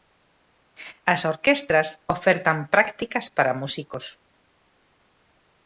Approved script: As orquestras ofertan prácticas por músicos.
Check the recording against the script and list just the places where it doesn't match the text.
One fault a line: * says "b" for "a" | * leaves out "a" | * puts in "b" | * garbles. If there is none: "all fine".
* says "para" for "por"